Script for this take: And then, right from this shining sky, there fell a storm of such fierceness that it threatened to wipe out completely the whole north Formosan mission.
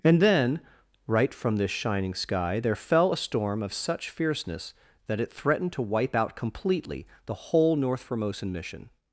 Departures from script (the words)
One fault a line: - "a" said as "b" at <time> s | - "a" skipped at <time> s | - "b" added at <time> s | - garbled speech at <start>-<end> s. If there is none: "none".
none